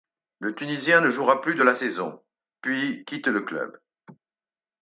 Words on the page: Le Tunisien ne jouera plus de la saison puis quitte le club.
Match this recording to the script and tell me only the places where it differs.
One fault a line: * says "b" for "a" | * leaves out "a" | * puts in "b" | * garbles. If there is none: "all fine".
all fine